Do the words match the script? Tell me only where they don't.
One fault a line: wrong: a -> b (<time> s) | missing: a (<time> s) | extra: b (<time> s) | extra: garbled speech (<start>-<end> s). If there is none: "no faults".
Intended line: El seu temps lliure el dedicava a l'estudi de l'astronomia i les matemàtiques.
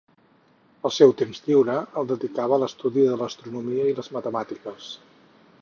no faults